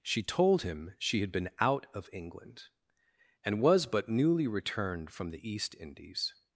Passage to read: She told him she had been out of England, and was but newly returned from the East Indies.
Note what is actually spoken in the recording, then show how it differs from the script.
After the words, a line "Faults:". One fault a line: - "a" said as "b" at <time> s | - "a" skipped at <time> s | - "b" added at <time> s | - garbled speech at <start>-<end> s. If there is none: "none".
She told him she had been out of England, and was but newly returned from the East Indies.
Faults:
none